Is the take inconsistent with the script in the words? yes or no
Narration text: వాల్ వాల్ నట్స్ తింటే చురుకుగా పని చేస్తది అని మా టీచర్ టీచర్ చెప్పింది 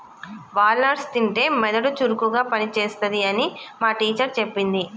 yes